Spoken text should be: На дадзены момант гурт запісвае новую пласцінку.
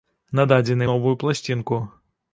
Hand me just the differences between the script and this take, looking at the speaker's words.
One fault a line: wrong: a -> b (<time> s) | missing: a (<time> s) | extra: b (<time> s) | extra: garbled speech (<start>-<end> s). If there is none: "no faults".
missing: момант гурт запісвае (0.9 s)